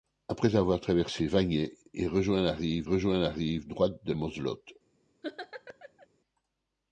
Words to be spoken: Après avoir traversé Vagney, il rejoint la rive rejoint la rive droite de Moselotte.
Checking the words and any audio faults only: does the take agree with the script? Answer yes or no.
no